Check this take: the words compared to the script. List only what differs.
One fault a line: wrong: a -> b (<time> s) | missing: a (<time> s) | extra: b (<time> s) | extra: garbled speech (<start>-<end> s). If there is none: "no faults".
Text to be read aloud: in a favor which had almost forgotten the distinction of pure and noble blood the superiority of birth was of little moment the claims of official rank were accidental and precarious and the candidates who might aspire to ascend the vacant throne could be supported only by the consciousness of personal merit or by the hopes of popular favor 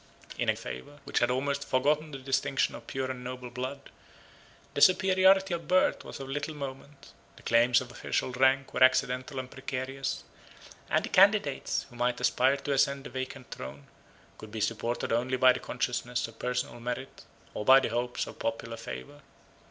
no faults